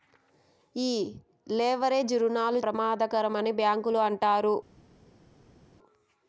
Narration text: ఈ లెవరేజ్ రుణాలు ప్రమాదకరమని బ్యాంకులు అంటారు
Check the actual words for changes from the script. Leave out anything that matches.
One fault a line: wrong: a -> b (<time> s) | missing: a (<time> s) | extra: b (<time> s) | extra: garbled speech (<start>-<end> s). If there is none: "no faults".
no faults